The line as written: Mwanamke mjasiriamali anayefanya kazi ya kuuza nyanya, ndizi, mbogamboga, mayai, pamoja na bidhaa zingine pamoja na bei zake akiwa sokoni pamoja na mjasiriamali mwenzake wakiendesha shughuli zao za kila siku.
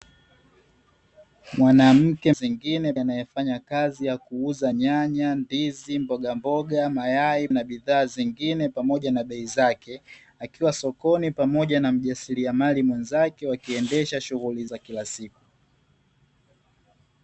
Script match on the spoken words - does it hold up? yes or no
no